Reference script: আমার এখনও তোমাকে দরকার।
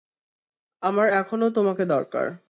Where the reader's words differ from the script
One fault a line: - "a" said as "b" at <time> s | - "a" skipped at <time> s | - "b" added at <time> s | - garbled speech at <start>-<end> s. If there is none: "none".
none